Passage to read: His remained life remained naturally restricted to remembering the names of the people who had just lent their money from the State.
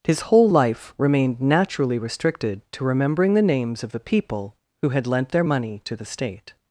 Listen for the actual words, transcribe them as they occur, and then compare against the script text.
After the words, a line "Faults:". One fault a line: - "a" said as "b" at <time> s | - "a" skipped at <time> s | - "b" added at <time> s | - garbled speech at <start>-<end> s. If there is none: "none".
His whole life remained naturally restricted to remembering the names of the people who had lent their money to the State.
Faults:
- "remained" said as "whole" at 0.2 s
- "just" skipped at 5.1 s
- "from" said as "to" at 5.8 s